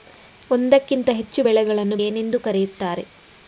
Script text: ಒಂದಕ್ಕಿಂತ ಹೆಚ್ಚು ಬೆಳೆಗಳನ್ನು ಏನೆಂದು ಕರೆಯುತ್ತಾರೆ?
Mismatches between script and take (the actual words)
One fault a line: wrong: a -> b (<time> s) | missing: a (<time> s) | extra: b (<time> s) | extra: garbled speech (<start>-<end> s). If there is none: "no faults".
no faults